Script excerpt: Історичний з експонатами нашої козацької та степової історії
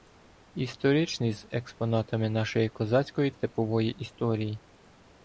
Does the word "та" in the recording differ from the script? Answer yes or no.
yes